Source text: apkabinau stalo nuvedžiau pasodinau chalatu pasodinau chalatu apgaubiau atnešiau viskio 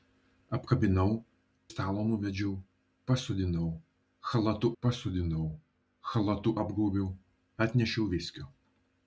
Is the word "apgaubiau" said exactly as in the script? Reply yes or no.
yes